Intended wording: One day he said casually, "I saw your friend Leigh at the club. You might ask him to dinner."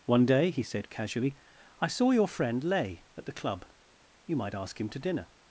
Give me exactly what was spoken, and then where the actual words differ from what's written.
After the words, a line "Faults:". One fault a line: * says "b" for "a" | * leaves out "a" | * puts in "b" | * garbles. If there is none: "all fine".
One day he said casually, "I saw your friend Leigh at the club. You might ask him to dinner."
Faults:
all fine